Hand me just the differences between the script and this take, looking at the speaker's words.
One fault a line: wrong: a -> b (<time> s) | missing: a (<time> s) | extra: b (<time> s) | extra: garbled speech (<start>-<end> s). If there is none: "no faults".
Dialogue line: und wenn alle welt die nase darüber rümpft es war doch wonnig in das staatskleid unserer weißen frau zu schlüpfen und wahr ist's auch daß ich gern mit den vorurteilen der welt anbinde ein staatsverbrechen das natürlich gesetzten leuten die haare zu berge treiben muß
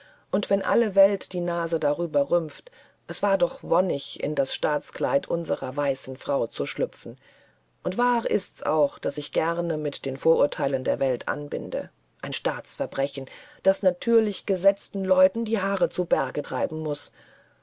no faults